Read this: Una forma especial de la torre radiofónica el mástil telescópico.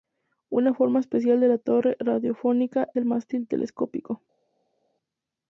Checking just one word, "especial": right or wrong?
right